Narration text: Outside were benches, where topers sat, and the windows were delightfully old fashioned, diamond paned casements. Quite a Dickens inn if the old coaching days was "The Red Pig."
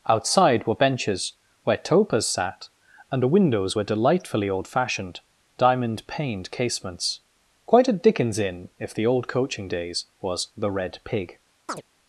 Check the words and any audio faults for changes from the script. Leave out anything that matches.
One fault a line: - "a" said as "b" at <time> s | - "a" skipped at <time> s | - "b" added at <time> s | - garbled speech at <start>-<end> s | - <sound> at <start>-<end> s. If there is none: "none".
- chirp at 11.7-11.8 s